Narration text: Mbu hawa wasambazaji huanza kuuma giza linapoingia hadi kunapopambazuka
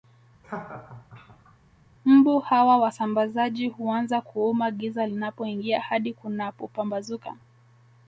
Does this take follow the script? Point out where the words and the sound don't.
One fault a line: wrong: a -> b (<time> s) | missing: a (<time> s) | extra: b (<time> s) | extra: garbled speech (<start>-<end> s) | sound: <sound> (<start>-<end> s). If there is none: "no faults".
sound: laugh (0.4-1.6 s)